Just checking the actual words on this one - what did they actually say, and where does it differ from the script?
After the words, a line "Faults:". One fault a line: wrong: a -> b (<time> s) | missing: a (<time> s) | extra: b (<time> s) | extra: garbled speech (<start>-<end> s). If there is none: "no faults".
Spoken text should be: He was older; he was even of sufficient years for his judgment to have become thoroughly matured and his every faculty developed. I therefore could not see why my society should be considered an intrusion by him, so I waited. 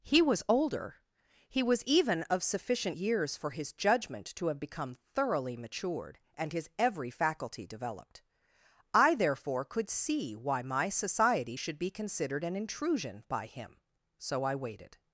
He was older; he was even of sufficient years for his judgment to have become thoroughly matured and his every faculty developed. I therefore could see why my society should be considered an intrusion by him, so I waited.
Faults:
missing: not (9.9 s)